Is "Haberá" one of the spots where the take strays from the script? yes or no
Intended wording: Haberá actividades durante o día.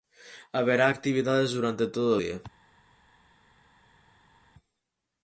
no